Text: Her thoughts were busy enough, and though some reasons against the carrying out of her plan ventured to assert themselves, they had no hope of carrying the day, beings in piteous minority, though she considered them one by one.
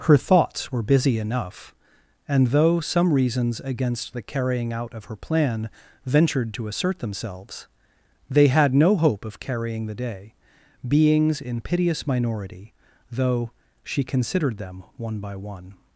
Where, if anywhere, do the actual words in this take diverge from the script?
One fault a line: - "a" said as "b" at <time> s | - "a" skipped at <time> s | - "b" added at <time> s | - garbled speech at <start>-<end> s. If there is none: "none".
none